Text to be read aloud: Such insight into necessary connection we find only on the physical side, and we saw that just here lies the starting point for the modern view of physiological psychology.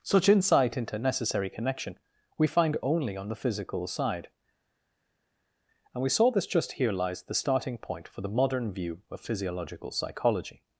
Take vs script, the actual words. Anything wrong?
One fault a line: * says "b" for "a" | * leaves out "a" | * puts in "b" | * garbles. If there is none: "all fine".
* says "this" for "that"